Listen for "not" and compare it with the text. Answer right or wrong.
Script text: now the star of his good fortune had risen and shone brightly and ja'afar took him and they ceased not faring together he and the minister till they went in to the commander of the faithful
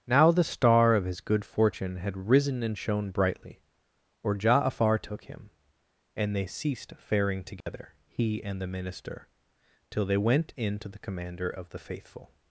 wrong